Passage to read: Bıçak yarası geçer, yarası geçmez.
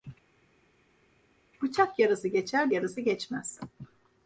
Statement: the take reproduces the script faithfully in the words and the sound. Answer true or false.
true